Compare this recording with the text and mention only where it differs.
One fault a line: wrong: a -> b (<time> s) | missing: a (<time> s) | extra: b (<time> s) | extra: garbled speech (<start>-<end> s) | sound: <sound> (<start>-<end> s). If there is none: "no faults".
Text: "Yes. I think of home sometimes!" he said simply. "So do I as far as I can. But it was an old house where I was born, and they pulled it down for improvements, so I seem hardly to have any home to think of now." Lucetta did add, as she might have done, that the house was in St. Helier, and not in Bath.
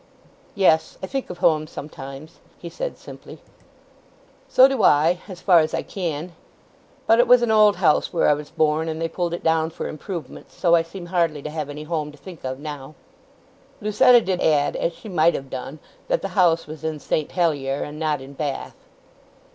no faults